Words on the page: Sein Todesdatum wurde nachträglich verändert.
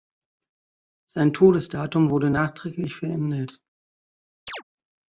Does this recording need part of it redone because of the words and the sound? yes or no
yes